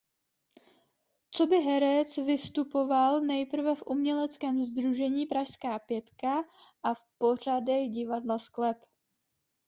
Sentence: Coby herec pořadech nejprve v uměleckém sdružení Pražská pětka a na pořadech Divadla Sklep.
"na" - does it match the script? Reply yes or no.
no